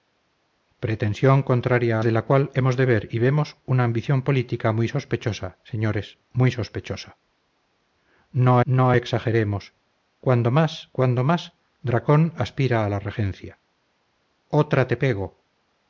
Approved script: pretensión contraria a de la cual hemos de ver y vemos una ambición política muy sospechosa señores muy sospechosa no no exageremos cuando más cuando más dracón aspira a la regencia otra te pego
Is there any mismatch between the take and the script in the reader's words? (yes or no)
no